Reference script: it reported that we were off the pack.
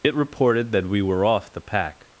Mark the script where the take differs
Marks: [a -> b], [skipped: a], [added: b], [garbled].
it reported that we were off the pack.